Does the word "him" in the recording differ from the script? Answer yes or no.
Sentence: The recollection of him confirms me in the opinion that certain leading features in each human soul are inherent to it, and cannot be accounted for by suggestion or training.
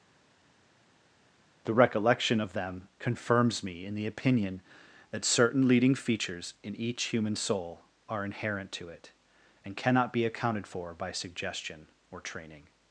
yes